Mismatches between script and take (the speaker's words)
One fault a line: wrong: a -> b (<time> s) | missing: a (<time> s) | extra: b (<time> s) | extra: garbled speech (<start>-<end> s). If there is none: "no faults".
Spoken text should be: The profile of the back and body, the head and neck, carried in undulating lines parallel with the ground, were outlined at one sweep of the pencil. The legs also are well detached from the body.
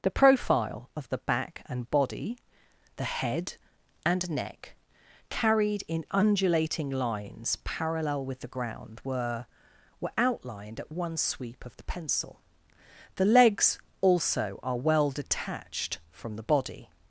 extra: were (10.0 s)